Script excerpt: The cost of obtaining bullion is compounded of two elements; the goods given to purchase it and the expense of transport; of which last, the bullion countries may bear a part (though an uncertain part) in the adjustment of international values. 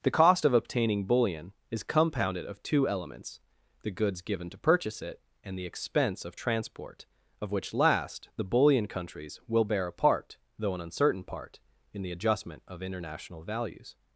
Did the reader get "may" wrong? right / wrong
wrong